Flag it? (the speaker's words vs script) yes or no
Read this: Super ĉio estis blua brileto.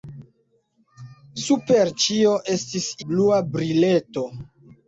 no